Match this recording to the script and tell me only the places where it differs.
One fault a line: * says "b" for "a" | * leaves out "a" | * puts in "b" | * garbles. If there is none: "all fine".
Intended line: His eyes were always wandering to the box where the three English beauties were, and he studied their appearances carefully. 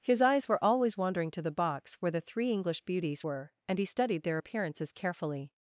all fine